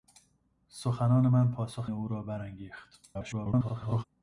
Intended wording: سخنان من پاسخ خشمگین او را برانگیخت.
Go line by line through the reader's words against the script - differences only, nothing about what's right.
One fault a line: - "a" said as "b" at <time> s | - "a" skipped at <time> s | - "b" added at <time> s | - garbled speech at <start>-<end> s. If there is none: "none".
- "خشمگین" skipped at 1.9 s
- garbled speech at 3.1-4.0 s